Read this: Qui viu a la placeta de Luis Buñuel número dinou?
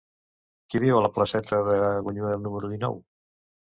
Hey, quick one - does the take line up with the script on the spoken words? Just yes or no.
no